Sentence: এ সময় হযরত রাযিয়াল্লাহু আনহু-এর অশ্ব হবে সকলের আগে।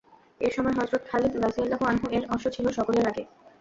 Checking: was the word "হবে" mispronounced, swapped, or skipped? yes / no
yes